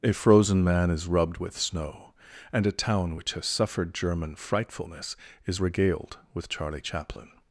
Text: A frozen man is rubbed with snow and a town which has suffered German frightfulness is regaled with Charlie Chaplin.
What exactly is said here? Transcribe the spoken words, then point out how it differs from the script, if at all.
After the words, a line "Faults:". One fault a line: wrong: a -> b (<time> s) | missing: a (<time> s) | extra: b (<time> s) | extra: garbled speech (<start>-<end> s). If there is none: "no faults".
A frozen man is rubbed with snow and a town which has suffered German frightfulness is regaled with Charlie Chaplin.
Faults:
no faults